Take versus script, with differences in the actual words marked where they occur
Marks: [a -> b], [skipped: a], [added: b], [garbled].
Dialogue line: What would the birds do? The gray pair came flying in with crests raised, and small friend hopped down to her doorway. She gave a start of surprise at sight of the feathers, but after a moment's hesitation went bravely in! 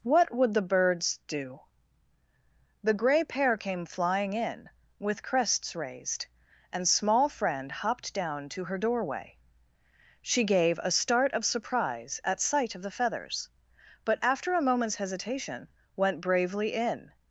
What would the birds do? The gray pair came flying in with crests raised, and small friend hopped down to her doorway. She gave a start of surprise at sight of the feathers, but after a moment's hesitation went bravely in!